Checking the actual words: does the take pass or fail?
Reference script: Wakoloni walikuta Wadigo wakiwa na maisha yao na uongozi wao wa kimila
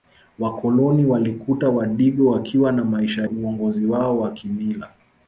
fail